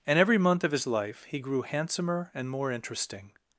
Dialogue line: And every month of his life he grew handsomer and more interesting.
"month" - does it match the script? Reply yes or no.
yes